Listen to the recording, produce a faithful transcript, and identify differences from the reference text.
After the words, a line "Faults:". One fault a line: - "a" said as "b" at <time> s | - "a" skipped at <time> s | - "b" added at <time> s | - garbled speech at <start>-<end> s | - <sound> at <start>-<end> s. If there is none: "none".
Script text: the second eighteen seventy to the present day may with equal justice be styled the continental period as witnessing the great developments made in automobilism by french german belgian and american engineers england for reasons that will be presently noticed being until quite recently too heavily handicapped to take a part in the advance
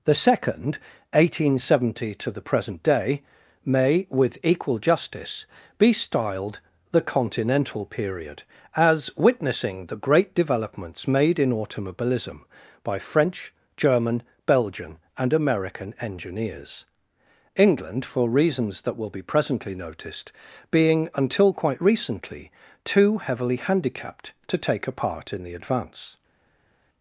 the second eighteen seventy to the present day may with equal justice be styled the continental period as witnessing the great developments made in automobilism by french german belgian and american engineers england for reasons that will be presently noticed being until quite recently too heavily handicapped to take a part in the advance
Faults:
none